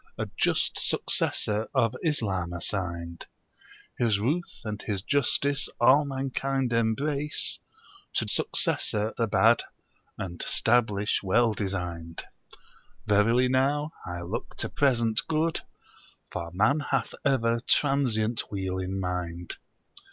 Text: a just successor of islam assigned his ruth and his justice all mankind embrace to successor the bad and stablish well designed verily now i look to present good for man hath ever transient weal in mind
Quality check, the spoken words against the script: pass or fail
pass